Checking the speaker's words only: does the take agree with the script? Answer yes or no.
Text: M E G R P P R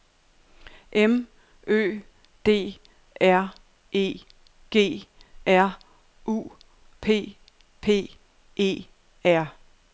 no